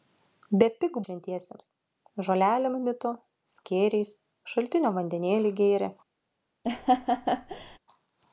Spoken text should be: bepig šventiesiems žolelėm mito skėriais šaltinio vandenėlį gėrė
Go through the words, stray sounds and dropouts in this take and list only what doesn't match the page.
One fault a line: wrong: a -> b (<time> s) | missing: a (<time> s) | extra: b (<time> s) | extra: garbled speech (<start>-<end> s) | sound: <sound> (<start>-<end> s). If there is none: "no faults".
sound: laugh (6.6-7.8 s)